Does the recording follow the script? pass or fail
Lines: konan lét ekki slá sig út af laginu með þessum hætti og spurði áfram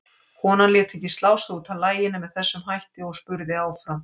pass